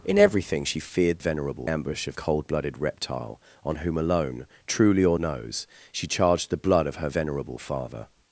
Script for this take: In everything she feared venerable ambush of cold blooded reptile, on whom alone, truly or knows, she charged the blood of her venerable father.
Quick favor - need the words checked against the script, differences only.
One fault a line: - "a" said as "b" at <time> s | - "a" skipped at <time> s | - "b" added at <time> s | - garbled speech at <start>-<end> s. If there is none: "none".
none